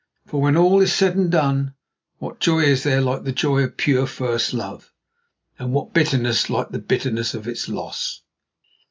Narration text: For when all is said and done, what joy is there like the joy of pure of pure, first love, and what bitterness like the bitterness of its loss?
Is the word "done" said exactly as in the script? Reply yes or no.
yes